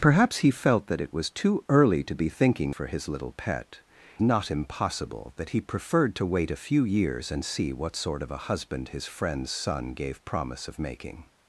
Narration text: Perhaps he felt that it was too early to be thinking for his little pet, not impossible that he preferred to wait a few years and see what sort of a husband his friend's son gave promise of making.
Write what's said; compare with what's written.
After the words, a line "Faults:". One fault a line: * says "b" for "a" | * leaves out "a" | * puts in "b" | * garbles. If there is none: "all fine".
Perhaps he felt that it was too early to be thinking for his little pet, not impossible that he preferred to wait a few years and see what sort of a husband his friend's son gave promise of making.
Faults:
all fine